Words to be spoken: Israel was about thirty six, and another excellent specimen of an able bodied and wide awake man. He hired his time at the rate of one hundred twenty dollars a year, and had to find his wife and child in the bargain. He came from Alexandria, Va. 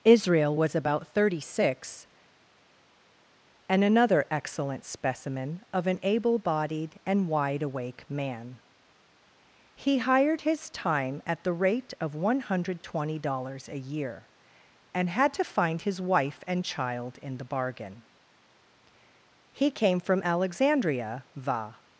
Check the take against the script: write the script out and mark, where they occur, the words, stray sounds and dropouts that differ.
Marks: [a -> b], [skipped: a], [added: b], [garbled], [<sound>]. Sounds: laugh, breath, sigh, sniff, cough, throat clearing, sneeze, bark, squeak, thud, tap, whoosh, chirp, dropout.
Israel was about thirty six, and another excellent specimen of an able bodied and wide awake man. He hired his time at the rate of one hundred twenty dollars a year, and had to find his wife and child in the bargain. He came from Alexandria, Va.